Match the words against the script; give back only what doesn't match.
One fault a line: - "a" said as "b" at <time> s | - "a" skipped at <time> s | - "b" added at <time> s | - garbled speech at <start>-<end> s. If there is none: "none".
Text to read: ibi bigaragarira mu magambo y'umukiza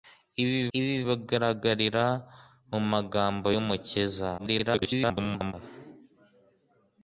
- "ibi" added at 0.8 s
- garbled speech at 4.4-5.5 s